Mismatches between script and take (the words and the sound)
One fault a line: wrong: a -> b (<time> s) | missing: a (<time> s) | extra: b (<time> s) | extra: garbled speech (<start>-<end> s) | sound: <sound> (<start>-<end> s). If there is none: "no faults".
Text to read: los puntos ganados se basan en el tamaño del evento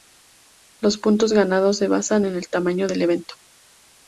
no faults